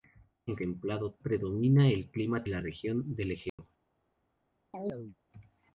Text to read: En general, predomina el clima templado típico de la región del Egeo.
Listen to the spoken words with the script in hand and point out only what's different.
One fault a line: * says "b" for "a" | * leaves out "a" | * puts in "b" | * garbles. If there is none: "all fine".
* says "templado" for "general"
* leaves out "templado típico de"